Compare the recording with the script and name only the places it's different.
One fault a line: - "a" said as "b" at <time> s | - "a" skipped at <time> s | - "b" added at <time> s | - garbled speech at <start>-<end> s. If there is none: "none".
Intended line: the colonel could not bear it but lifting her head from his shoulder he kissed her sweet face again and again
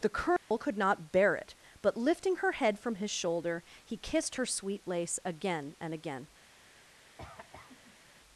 - "face" said as "lace" at 4.9 s